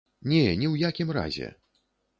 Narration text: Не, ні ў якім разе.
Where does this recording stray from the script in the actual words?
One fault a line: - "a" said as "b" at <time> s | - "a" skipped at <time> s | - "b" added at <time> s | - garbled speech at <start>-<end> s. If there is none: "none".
none